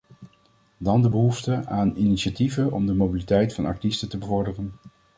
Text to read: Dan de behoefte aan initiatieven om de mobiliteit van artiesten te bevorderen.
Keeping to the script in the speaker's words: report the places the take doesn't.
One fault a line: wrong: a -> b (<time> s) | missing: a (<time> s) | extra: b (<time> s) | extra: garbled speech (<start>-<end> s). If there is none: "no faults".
no faults